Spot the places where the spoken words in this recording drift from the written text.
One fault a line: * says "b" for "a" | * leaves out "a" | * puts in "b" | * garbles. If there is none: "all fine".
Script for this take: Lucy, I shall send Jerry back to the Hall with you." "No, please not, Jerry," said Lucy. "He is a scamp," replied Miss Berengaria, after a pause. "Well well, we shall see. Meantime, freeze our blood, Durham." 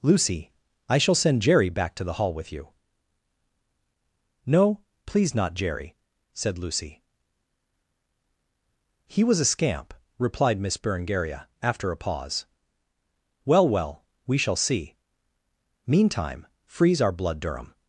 * says "was" for "is"